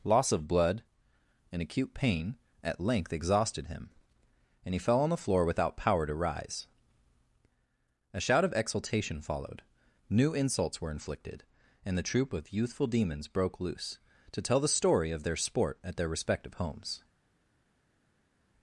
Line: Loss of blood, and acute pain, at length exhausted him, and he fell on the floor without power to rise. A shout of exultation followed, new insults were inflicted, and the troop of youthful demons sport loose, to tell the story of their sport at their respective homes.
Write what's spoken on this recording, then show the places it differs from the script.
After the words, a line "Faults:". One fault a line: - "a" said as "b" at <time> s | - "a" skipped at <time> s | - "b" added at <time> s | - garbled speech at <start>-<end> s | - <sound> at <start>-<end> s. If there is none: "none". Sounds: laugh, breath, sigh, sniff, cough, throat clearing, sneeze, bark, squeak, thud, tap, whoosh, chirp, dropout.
Loss of blood, and acute pain, at length exhausted him, and he fell on the floor without power to rise. A shout of exultation followed, new insults were inflicted, and the troop of youthful demons broke loose, to tell the story of their sport at their respective homes.
Faults:
- "sport" said as "broke" at 13.3 s